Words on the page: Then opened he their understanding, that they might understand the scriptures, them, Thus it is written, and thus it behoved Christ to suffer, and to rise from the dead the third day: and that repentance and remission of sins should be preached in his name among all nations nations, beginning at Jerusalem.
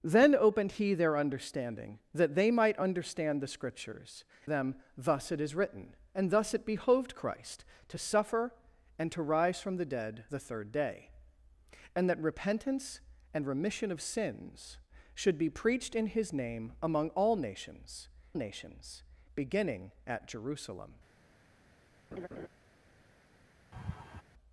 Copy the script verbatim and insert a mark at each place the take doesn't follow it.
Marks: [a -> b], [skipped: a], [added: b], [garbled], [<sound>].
Then opened he their understanding, that they might understand the scriptures, them, Thus it is written, and thus it behoved Christ to suffer, and to rise from the dead the third day: and that repentance and remission of sins should be preached in his name among all nations nations, beginning at Jerusalem. [laugh] [laugh]